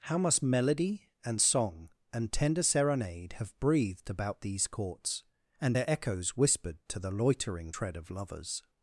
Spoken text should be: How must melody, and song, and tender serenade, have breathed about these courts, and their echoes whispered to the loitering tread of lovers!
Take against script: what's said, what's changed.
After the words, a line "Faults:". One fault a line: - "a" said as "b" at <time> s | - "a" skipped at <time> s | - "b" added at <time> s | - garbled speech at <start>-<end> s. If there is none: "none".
How must melody, and song, and tender serenade, have breathed about these courts, and their echoes whispered to the loitering tread of lovers!
Faults:
none